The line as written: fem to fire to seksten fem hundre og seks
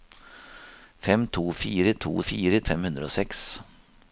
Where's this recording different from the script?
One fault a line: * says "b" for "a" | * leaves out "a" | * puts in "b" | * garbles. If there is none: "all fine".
* says "fire" for "seksten"